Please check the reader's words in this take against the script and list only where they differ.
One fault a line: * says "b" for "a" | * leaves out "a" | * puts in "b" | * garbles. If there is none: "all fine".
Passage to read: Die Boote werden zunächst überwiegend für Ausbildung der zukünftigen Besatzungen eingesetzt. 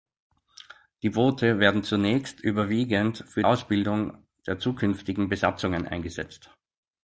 all fine